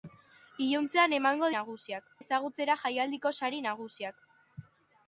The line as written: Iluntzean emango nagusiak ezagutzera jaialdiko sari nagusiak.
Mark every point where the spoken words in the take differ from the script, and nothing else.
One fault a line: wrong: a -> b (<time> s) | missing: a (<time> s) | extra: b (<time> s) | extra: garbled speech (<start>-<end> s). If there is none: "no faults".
no faults